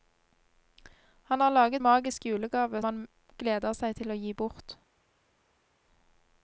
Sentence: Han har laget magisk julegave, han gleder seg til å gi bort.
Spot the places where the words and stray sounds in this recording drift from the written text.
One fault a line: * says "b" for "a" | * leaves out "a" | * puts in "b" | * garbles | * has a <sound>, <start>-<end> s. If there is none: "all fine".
all fine